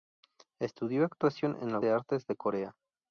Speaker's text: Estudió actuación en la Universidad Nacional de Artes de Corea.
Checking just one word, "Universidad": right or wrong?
wrong